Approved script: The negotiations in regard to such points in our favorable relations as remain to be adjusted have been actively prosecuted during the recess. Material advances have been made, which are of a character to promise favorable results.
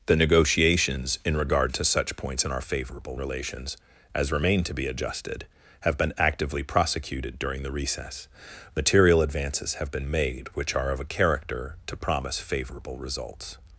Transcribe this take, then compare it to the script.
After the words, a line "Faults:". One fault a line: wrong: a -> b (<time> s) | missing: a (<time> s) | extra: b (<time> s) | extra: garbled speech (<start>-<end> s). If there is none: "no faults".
The negotiations in regard to such points in our favorable relations as remain to be adjusted have been actively prosecuted during the recess. Material advances have been made, which are of a character to promise favorable results.
Faults:
no faults